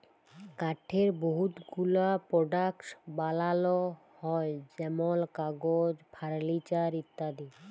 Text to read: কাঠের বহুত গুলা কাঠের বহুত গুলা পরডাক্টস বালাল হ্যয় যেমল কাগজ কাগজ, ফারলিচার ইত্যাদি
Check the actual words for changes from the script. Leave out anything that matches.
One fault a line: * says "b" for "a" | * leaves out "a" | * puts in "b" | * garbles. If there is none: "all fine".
* leaves out "কাঠের বহুত গুলা"
* leaves out "কাগজ"